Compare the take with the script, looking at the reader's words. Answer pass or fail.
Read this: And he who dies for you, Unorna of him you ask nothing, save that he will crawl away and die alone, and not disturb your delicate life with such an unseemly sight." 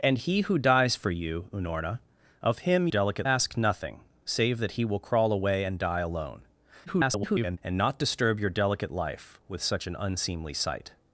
fail